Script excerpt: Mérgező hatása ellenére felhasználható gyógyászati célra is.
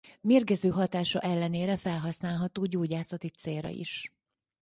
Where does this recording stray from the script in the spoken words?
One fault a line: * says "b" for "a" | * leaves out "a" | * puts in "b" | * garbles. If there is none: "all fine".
all fine